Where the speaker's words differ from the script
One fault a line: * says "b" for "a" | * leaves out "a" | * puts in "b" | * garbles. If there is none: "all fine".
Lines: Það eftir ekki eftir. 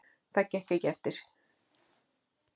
* says "gekk" for "eftir"